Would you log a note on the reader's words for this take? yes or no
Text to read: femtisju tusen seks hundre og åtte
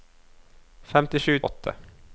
yes